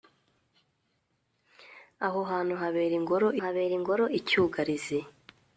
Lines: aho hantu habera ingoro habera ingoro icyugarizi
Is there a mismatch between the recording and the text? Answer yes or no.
no